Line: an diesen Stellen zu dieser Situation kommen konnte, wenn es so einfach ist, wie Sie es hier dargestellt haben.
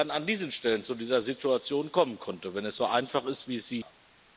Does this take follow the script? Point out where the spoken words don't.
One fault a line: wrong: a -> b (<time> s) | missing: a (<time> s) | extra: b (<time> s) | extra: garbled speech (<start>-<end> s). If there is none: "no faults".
missing: hier dargestellt (3.8 s)